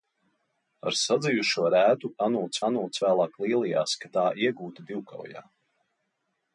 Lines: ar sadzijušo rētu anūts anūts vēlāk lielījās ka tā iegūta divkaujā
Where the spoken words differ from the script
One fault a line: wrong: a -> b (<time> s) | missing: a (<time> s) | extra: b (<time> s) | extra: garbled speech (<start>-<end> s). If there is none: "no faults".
no faults